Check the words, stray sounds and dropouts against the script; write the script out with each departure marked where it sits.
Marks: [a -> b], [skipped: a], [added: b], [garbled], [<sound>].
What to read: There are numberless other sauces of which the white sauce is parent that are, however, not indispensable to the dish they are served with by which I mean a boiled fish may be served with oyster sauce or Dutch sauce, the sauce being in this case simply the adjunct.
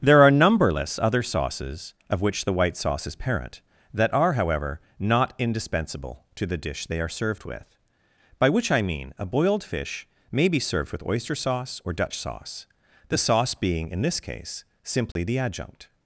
There are numberless other sauces of which the white sauce is parent that are, however, not indispensable to the dish they are served with by which I mean a boiled fish may be served with oyster sauce or Dutch sauce, the sauce being in this case simply [dropout] the adjunct.